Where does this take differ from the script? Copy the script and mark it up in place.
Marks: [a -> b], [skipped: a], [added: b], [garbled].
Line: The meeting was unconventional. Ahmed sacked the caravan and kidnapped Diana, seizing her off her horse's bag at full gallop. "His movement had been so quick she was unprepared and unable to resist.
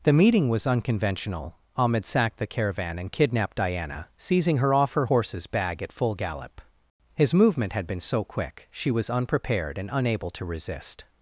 The meeting was unconventional. Ahmed sacked the caravan and kidnapped Diana, seizing her off her horse's bag at full gallop. "His movement had been so quick she was unprepared and unable to resist.